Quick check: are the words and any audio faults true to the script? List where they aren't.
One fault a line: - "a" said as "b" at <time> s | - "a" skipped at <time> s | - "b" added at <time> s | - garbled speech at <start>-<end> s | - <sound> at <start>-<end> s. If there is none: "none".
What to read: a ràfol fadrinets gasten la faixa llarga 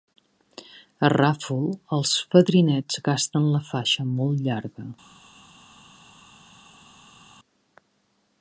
- "els" added at 2.0 s
- "molt" added at 4.2 s